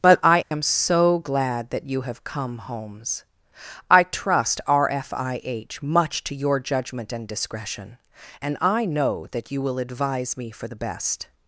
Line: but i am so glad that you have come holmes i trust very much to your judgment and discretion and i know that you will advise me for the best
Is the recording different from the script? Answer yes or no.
yes